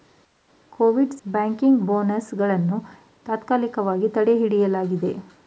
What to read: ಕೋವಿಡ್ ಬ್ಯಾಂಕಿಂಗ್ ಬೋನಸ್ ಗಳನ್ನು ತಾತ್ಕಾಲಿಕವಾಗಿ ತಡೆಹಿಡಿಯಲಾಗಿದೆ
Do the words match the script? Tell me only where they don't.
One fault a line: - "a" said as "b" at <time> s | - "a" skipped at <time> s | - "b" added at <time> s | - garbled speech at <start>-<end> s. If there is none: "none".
none